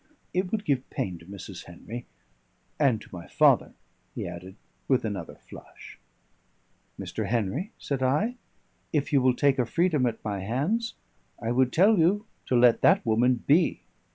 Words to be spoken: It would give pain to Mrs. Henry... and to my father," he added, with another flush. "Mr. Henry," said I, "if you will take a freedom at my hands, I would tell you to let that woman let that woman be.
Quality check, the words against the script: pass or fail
fail